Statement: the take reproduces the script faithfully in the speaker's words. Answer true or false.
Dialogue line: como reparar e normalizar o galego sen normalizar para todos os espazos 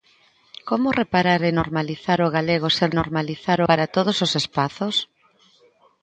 true